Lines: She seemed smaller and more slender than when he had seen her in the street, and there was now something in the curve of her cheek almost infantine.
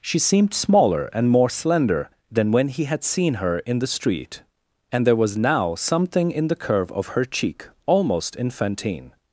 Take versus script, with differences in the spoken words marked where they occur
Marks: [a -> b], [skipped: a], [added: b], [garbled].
She seemed smaller and more slender than when he had seen her in the street, and there was now something in the curve of her cheek almost infantine.